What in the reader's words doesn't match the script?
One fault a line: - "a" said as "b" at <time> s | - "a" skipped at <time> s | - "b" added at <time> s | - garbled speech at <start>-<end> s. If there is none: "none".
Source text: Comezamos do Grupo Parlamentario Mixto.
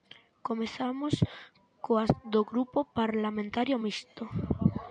- "coas" added at 1.9 s